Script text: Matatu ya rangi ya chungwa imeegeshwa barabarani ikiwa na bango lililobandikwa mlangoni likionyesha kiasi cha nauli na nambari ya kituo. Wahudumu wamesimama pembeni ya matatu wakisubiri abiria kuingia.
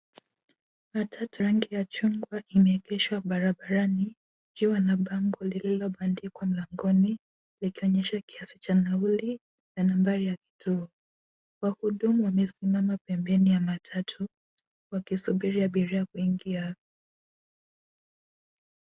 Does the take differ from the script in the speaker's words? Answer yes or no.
yes